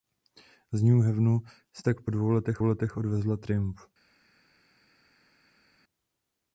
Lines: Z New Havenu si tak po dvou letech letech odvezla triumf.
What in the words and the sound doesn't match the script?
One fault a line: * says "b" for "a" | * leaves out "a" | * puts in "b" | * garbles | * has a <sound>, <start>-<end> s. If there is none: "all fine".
all fine